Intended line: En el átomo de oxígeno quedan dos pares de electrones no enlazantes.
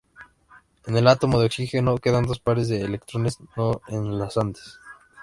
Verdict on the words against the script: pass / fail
pass